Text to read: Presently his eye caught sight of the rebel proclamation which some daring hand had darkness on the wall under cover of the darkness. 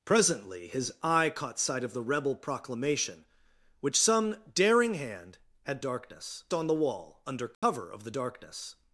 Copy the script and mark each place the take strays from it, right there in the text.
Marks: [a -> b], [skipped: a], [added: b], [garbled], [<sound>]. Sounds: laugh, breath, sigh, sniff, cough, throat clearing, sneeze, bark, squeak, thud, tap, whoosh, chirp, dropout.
Presently his eye caught sight of the rebel proclamation which some daring hand had darkness on the wall under cover [dropout] of the darkness.